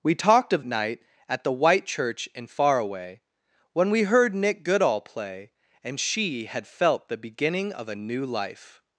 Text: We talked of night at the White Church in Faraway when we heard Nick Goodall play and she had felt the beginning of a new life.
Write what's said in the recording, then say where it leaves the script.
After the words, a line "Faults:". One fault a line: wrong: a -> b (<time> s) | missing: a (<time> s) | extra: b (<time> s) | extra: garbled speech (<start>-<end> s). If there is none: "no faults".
We talked of night at the White Church in Faraway when we heard Nick Goodall play and she had felt the beginning of a new life.
Faults:
no faults